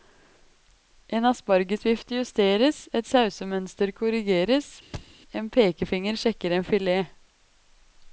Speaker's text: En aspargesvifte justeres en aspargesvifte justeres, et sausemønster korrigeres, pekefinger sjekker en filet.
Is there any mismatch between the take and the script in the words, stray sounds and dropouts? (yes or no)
yes